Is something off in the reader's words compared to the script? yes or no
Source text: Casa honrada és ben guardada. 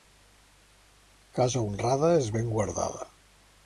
no